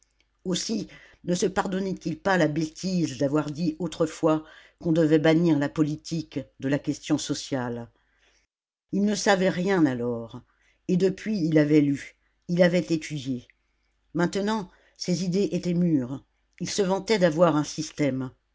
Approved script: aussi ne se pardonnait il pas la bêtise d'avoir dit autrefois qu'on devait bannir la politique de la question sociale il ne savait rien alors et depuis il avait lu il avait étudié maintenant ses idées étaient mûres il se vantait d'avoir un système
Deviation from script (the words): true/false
false